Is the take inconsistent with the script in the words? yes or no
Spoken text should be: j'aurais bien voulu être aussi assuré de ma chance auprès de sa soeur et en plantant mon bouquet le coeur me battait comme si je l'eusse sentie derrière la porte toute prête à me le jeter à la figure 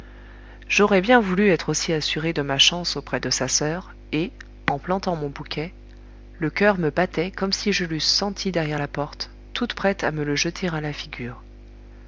no